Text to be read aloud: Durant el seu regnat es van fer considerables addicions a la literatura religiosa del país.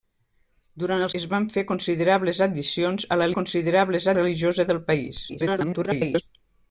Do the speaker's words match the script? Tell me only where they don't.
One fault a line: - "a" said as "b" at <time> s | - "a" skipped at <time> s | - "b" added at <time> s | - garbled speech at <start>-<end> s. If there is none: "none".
- "seu regnat" skipped at 1.1 s
- "literatura" said as "considerables" at 3.4 s
- garbled speech at 5.3-6.2 s